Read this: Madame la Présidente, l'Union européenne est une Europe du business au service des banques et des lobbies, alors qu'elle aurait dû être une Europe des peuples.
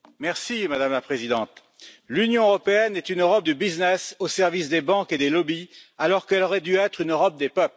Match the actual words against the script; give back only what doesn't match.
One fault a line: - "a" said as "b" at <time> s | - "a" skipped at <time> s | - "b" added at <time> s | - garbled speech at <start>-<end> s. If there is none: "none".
none